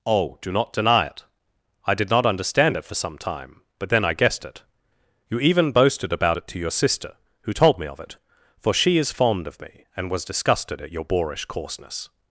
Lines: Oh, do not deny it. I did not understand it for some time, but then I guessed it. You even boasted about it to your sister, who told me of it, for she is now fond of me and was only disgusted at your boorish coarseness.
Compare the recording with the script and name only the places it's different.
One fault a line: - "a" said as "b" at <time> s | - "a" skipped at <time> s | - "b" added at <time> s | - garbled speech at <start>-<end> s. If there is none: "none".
- "now" skipped at 9.1 s
- "only" skipped at 10.2 s